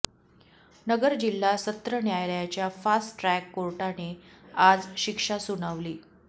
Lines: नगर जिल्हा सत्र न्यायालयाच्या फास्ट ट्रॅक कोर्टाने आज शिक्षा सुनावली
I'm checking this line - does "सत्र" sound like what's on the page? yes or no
yes